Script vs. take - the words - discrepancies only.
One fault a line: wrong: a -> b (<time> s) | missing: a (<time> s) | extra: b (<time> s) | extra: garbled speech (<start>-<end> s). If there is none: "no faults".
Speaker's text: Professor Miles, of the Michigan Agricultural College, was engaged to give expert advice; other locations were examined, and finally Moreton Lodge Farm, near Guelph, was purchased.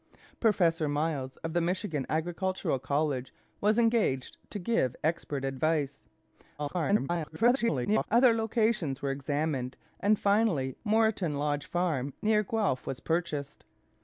extra: garbled speech (6.6-8.1 s)